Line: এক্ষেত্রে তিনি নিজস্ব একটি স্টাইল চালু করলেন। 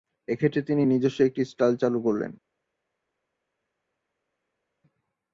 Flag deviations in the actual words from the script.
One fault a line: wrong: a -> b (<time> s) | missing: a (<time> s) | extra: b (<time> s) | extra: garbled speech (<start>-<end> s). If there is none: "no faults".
no faults